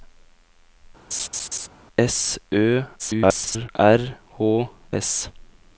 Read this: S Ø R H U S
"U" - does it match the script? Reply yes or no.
no